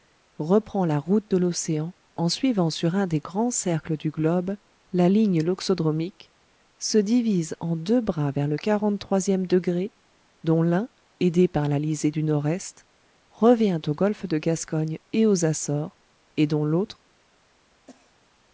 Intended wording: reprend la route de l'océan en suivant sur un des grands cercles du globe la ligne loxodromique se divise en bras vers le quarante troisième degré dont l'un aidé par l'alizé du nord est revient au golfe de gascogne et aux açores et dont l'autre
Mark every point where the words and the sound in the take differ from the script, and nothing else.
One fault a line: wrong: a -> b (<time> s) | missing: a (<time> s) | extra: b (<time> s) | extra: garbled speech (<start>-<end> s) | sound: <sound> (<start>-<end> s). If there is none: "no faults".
extra: deux (7.8 s)
sound: cough (17.9-18.2 s)